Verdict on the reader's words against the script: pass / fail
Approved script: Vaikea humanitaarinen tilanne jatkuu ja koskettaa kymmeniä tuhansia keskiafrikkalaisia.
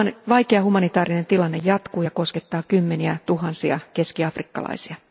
pass